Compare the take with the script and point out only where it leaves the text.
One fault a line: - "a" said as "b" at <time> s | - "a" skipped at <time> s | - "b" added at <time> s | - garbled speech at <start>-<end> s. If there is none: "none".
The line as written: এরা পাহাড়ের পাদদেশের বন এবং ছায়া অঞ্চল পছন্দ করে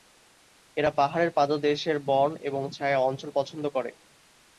none